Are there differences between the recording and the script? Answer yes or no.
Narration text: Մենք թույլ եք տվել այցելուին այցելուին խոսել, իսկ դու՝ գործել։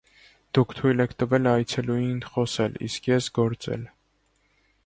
yes